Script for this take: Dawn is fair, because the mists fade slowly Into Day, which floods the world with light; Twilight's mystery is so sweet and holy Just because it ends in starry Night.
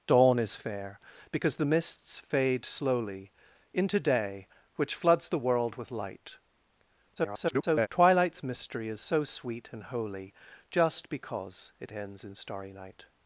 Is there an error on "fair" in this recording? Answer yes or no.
no